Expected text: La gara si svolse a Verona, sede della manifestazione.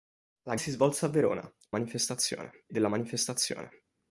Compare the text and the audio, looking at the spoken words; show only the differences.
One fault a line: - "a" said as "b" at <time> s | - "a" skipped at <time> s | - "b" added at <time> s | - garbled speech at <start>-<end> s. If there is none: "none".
- "gara" skipped at 0.6 s
- "sede" said as "manifestazione" at 1.7 s